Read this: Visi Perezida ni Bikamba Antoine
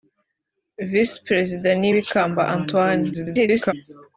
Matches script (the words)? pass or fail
fail